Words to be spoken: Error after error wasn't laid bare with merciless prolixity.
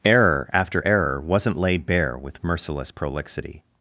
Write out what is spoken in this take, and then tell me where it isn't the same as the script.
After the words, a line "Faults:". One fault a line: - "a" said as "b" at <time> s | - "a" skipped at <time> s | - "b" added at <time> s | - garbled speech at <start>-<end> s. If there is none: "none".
Error after error wasn't laid bare with merciless prolixity.
Faults:
none